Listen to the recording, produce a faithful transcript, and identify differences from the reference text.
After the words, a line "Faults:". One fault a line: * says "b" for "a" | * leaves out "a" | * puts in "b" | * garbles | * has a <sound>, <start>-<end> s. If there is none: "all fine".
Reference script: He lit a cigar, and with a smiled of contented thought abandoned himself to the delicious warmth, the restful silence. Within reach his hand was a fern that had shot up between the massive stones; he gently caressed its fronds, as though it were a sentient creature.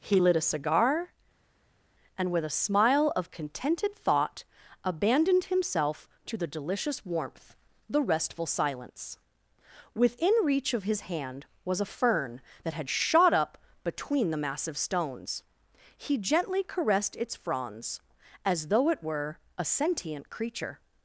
He lit a cigar, and with a smile of contented thought abandoned himself to the delicious warmth, the restful silence. Within reach of his hand was a fern that had shot up between the massive stones; he gently caressed its fronds, as though it were a sentient creature.
Faults:
* says "smile" for "smiled"
* puts in "of"